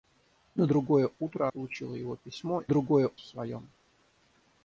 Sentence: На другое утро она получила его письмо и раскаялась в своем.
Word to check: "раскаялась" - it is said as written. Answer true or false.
false